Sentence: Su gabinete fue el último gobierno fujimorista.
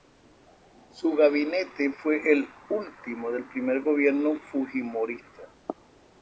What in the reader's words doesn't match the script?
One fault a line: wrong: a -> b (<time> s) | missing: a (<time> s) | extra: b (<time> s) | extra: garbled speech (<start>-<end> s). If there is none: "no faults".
extra: del primer (3.3 s)